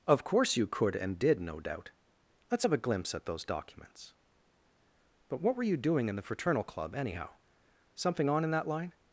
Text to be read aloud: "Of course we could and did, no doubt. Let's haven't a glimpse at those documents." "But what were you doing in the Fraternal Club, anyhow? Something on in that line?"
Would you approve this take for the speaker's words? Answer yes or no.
no